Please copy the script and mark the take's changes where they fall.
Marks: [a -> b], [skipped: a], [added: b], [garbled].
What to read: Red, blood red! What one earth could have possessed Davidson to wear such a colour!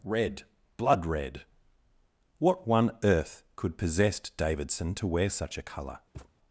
Red, blood red! What one earth could [skipped: have] possessed Davidson to wear such a colour!